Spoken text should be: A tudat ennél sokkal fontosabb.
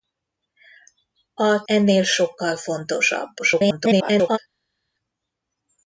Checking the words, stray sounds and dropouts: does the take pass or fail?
fail